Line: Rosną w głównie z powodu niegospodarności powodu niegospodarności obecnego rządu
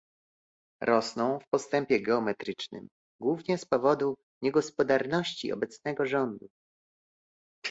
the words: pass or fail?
fail